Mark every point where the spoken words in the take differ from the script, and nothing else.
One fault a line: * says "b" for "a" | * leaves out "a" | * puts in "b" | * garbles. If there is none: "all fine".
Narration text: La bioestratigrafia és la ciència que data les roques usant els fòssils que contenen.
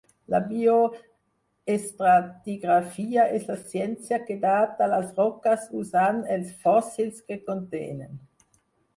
all fine